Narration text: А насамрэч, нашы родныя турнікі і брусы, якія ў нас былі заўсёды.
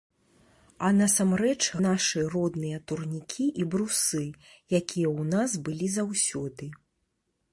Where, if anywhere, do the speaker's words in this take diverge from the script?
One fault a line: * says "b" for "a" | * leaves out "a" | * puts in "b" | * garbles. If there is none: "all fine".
all fine